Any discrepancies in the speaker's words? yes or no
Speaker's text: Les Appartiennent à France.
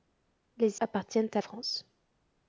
no